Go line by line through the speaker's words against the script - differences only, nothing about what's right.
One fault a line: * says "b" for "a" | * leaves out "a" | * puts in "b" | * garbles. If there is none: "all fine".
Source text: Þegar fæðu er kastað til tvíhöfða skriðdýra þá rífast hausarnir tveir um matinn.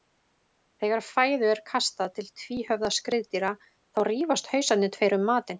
all fine